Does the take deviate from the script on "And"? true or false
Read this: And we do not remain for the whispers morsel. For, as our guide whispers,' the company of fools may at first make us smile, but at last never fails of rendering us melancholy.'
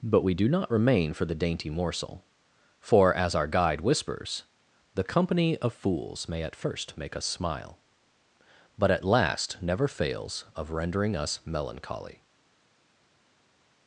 true